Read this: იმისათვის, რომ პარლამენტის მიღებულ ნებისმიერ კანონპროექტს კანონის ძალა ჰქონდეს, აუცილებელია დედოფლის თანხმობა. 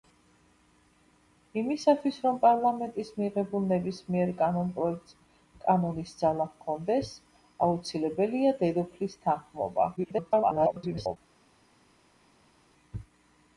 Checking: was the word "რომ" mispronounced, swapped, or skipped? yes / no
no